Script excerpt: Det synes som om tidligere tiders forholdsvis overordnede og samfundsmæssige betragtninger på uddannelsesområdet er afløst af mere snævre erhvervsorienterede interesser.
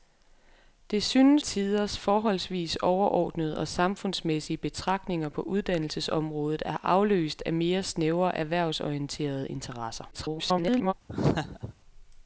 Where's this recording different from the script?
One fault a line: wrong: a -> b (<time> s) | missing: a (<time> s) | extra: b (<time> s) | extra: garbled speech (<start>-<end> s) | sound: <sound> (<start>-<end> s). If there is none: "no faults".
missing: som om tidligere (1.4 s)
extra: garbled speech (10.1-10.9 s)
sound: laugh (11.1-11.7 s)